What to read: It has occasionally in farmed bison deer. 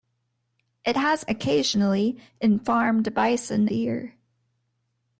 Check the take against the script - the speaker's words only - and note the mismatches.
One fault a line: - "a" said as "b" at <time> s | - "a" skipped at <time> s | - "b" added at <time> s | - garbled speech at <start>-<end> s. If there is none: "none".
none